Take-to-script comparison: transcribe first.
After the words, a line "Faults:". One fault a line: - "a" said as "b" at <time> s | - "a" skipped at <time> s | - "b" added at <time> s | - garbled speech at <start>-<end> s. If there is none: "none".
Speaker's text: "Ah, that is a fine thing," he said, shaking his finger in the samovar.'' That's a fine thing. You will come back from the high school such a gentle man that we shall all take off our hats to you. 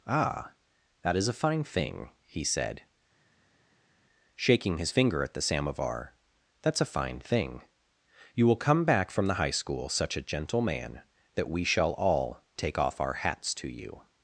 "Ah, that is a fine thing," he said, shaking his finger at the samovar.'' That's a fine thing. You will come back from the high school such a gentle man that we shall all take off our hats to you.
Faults:
- "in" said as "at" at 5.2 s